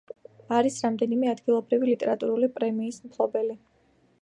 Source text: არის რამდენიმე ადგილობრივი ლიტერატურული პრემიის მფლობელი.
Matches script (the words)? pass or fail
pass